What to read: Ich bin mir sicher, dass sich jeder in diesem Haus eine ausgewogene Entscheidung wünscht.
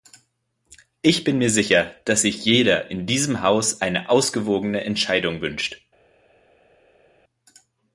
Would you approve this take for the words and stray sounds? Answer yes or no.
yes